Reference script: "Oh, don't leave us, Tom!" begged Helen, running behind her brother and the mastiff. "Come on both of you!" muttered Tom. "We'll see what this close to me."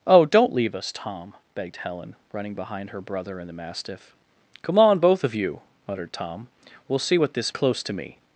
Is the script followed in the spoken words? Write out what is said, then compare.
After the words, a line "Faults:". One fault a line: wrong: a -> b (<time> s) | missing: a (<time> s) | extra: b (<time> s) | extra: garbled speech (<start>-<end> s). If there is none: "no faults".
"Oh, don't leave us, Tom!" begged Helen, running behind her brother and the mastiff. "Come on both of you!" muttered Tom. "We'll see what this close to me."
Faults:
no faults